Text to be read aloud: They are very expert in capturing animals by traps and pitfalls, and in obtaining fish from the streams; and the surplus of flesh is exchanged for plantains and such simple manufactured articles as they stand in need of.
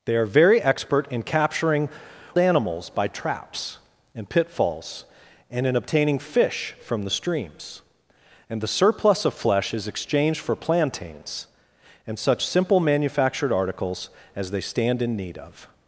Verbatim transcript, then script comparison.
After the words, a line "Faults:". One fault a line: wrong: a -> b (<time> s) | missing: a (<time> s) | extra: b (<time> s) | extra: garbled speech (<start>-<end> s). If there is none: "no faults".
They are very expert in capturing animals by traps and pitfalls, and in obtaining fish from the streams; and the surplus of flesh is exchanged for plantains and such simple manufactured articles as they stand in need of.
Faults:
no faults